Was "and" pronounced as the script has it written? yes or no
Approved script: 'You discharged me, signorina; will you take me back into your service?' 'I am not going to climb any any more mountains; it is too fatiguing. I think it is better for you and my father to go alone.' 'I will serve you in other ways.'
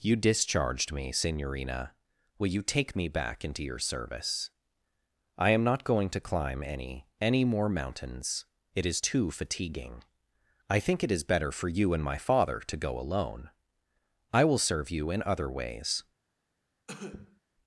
yes